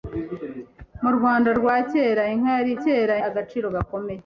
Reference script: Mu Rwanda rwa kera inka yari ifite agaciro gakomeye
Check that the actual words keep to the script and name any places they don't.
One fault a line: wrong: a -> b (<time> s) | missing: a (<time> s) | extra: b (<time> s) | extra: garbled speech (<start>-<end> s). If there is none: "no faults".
wrong: ifite -> kera (2.8 s)